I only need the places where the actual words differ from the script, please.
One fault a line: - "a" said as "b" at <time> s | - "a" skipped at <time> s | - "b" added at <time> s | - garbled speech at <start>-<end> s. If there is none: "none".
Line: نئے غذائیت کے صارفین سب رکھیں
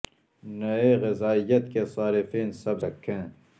none